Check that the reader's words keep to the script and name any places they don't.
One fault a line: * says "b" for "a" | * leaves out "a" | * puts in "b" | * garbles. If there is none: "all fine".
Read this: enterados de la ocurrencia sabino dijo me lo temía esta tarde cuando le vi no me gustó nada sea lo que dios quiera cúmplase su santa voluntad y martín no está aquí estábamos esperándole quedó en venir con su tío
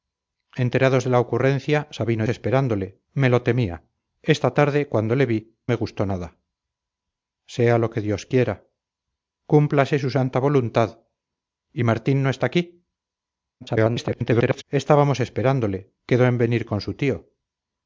* says "esperándole" for "dijo"
* leaves out "no"
* garbles